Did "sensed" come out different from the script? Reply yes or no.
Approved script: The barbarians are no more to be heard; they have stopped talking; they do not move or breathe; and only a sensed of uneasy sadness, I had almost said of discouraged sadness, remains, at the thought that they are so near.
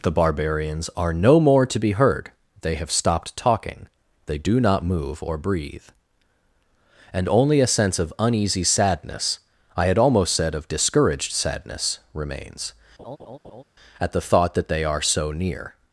yes